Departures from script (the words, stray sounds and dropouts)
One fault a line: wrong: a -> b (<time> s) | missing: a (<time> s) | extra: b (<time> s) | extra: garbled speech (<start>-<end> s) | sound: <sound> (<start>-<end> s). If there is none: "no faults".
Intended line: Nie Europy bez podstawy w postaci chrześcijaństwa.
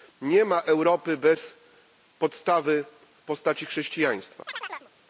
extra: ma (0.5 s)
sound: chirp (4.5-4.9 s)